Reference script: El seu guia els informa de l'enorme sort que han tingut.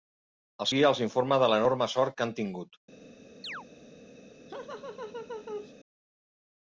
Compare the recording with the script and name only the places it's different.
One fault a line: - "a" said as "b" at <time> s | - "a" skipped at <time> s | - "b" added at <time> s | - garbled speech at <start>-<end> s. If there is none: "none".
- "seu" skipped at 0.7 s